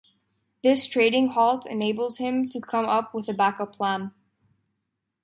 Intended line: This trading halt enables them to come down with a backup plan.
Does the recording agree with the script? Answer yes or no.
no